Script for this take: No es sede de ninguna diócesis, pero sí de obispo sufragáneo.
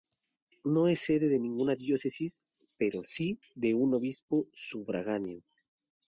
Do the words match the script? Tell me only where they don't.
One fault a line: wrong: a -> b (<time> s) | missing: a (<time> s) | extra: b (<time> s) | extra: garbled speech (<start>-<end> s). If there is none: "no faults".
extra: un (3.7 s)